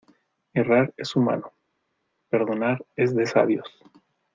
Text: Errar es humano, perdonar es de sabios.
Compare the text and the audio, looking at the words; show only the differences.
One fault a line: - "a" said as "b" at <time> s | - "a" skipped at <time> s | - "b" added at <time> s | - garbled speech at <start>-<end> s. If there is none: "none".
none